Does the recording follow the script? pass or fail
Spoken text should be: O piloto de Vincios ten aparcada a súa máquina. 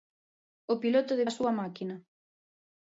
fail